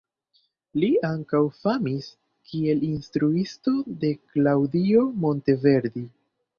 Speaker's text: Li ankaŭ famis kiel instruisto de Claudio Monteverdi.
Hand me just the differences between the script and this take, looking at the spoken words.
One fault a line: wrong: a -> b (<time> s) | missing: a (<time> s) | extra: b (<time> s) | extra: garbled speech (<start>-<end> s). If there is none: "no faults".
no faults